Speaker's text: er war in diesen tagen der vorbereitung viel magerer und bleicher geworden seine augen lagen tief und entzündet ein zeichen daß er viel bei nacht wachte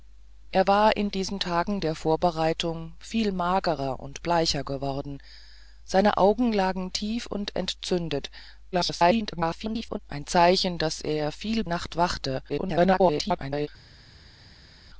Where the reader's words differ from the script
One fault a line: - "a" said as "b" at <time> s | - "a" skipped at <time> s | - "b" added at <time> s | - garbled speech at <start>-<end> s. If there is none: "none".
- garbled speech at 8.7-10.0 s
- "bei" skipped at 11.6 s
- garbled speech at 12.5-13.7 s